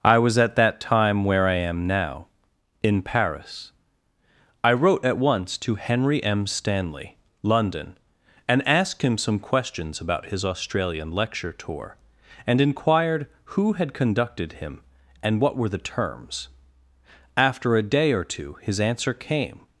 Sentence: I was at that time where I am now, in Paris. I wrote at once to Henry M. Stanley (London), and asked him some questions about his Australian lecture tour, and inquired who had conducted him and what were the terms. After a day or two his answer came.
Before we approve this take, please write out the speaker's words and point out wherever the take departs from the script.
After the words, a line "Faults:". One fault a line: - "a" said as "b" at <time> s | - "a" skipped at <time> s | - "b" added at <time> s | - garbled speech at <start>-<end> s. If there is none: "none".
I was at that time where I am now, in Paris. I wrote at once to Henry M. Stanley (London), and asked him some questions about his Australian lecture tour, and inquired who had conducted him and what were the terms. After a day or two his answer came.
Faults:
none